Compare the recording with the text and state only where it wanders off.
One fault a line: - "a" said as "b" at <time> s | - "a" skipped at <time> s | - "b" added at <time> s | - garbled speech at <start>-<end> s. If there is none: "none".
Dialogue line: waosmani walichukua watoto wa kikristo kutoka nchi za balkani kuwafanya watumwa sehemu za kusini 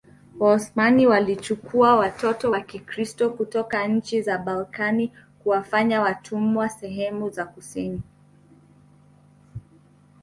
none